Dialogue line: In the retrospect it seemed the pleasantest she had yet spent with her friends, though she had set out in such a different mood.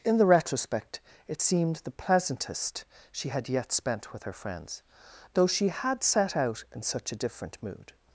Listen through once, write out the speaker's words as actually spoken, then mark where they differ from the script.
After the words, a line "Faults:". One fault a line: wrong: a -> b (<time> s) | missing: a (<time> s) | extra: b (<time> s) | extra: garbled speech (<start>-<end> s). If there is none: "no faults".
In the retrospect it seemed the pleasantest she had yet spent with her friends, though she had set out in such a different mood.
Faults:
no faults